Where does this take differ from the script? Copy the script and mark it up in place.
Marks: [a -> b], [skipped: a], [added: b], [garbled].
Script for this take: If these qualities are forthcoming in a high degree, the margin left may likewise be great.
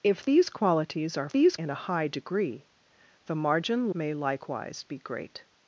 If these qualities are [forthcoming -> these] in a high degree, the margin [skipped: left] may likewise be great.